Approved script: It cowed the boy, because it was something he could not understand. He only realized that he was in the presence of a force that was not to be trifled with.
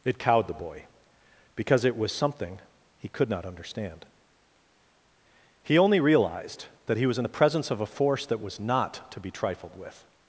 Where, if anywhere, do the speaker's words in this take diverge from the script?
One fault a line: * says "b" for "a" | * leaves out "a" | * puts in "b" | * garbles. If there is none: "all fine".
all fine